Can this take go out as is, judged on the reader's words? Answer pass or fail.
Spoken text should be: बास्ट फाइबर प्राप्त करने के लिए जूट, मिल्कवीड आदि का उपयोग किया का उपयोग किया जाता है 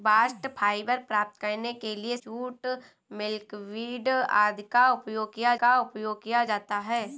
pass